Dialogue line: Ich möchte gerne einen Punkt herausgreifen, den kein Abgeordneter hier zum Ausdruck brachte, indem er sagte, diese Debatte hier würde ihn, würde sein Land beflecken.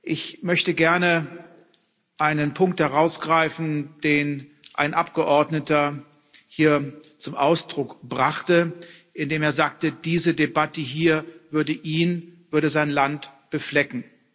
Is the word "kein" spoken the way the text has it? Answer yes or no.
no